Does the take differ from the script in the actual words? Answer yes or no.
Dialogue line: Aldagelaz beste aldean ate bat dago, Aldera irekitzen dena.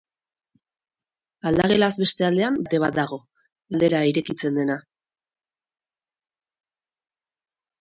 no